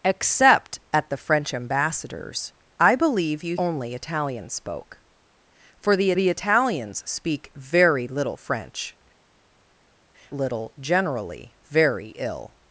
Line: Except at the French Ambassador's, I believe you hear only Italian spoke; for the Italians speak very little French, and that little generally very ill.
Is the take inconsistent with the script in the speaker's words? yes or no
yes